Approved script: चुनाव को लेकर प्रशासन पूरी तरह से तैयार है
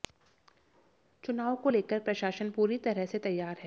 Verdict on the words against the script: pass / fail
pass